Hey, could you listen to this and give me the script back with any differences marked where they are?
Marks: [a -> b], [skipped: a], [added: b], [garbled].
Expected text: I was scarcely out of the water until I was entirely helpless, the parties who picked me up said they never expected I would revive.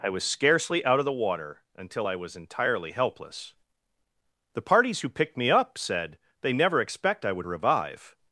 I was scarcely out of the water until I was entirely helpless, the parties who picked me up said they never [expected -> expect] I would revive.